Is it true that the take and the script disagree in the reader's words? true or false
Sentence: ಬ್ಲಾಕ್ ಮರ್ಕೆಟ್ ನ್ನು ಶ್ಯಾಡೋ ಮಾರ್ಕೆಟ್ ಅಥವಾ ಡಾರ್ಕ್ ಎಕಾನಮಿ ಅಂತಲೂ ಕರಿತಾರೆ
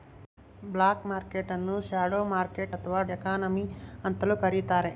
true